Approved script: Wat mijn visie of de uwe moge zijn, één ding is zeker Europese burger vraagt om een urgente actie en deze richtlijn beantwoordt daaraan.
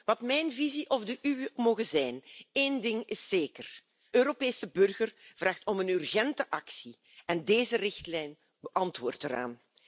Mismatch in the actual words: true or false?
false